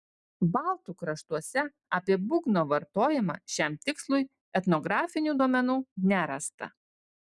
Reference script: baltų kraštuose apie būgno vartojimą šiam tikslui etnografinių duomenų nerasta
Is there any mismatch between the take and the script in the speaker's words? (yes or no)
no